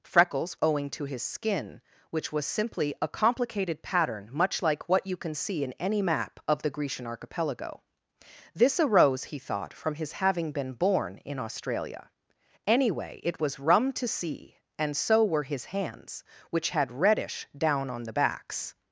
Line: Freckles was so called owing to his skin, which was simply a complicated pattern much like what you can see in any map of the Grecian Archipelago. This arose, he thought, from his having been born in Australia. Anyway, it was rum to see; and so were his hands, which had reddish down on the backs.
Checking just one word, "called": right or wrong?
wrong